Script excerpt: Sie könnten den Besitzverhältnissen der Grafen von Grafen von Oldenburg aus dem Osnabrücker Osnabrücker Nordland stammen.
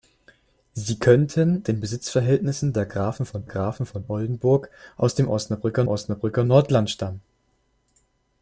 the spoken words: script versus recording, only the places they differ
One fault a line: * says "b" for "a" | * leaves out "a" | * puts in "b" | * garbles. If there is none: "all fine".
all fine